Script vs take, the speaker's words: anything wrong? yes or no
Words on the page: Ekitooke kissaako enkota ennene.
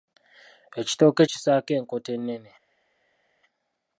no